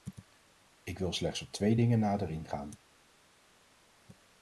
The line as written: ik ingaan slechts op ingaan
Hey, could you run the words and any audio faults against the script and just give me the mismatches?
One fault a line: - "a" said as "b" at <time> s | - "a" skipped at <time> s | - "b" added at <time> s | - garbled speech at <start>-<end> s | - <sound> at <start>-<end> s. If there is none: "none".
- "ingaan" said as "wil" at 1.0 s
- "twee dingen nader" added at 1.5 s